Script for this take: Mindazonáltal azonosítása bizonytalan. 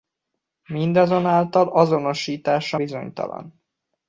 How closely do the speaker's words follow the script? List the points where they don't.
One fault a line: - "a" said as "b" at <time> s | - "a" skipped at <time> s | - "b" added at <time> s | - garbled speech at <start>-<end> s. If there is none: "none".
none